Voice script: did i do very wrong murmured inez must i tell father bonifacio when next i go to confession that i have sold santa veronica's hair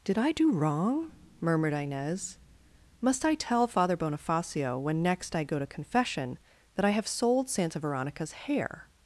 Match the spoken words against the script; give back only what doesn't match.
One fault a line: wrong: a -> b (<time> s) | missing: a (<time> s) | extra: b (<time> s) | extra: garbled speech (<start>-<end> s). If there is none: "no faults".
missing: very (0.5 s)